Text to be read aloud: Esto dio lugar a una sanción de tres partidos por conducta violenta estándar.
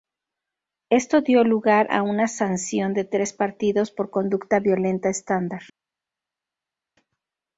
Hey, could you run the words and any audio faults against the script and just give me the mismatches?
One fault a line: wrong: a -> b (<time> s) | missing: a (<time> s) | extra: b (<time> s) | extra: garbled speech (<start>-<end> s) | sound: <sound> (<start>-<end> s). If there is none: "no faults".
no faults